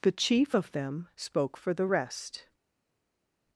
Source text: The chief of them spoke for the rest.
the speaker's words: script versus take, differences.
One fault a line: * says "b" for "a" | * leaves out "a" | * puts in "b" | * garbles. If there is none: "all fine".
all fine